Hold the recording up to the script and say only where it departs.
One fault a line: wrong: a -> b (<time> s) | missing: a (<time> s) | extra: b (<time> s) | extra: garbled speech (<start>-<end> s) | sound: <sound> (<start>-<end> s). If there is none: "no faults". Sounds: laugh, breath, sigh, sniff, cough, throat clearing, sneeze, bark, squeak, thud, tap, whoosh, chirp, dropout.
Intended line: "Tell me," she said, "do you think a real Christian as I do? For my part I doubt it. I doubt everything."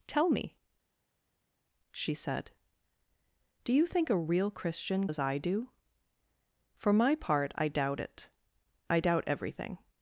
no faults